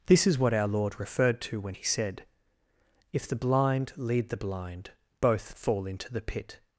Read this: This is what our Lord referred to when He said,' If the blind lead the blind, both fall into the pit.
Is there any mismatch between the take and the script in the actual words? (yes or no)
no